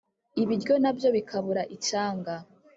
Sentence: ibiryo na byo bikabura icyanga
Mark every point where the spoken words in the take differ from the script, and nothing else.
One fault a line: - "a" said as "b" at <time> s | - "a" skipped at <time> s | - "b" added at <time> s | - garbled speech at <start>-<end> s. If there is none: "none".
none